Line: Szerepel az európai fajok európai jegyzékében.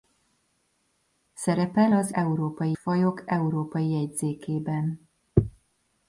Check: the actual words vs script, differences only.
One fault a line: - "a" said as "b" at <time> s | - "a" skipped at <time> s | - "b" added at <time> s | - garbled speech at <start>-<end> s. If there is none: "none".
none